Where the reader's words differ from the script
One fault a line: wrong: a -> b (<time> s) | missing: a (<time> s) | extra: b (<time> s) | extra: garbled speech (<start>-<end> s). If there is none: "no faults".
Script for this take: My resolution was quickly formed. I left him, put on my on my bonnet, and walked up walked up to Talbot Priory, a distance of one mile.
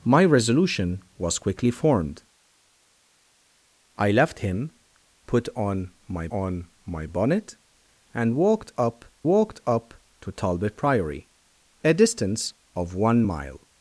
no faults